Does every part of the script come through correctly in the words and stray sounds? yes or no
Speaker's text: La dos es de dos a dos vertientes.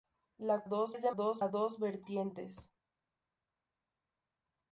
yes